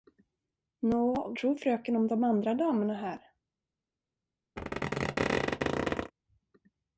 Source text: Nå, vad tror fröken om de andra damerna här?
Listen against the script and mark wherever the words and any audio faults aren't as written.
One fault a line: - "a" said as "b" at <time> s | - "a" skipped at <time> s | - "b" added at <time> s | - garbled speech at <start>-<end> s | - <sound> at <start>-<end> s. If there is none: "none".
- "vad" skipped at 1.3 s
- squeak at 4.6-6.1 s